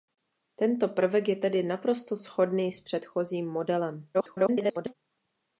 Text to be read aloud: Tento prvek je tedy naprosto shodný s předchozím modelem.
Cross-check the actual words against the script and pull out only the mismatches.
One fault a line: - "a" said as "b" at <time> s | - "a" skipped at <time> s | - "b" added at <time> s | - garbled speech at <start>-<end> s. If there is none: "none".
- garbled speech at 4.1-4.9 s